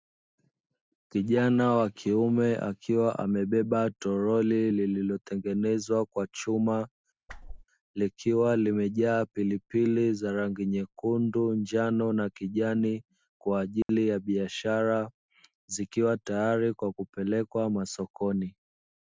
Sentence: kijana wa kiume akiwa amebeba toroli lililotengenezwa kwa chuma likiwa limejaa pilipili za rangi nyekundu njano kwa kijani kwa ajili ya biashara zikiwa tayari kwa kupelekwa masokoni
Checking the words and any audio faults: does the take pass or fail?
fail